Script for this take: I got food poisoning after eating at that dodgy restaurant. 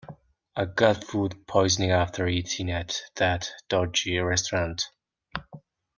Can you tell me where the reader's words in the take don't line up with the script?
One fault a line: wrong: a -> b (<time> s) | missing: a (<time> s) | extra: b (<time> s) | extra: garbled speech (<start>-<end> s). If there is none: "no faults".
no faults